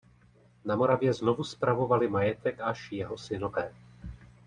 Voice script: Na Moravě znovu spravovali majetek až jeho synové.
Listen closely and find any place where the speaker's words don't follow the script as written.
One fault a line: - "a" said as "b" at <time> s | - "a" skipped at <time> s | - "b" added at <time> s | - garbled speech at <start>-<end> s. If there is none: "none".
none